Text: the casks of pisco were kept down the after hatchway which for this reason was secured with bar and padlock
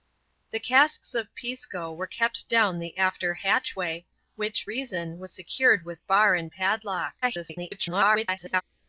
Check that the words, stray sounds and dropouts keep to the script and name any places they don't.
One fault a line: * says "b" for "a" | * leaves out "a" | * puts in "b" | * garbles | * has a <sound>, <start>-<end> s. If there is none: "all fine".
* leaves out "for this"
* garbles